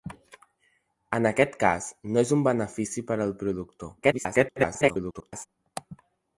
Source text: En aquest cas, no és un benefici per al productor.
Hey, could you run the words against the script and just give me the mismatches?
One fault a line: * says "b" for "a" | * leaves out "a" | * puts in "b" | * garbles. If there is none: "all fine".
* garbles